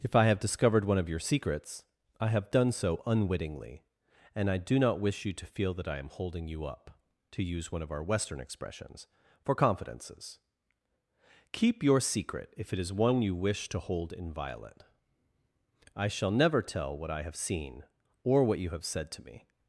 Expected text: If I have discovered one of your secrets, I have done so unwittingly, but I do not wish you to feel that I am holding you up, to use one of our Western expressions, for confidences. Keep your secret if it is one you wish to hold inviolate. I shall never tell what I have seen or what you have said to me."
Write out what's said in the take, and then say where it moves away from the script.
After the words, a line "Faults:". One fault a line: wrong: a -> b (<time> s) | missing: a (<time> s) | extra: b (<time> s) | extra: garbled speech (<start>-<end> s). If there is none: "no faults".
If I have discovered one of your secrets, I have done so unwittingly, and I do not wish you to feel that I am holding you up, to use one of our Western expressions, for confidences. Keep your secret if it is one you wish to hold inviolate. I shall never tell what I have seen or what you have said to me."
Faults:
wrong: but -> and (4.3 s)